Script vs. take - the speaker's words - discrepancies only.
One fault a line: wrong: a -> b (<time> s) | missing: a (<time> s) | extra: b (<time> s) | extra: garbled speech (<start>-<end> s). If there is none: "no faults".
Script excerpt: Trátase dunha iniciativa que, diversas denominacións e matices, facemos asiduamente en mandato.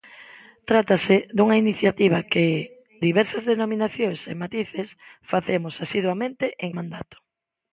no faults